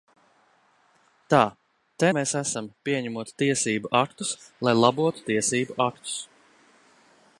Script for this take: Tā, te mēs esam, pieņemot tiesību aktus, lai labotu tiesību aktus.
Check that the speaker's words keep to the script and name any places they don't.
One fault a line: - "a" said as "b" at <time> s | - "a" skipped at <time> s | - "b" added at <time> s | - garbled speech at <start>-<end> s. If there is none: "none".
none